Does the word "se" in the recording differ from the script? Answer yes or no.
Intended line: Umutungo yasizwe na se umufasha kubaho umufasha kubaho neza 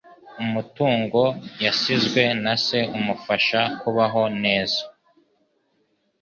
no